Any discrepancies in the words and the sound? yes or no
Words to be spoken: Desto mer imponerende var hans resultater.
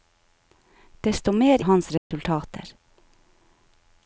yes